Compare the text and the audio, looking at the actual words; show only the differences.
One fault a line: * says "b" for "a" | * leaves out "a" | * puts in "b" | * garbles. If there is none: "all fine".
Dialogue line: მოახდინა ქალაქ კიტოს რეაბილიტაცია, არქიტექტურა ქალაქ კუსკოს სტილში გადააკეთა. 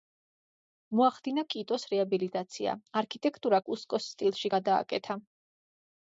* leaves out "ქალაქ"
* leaves out "ქალაქ"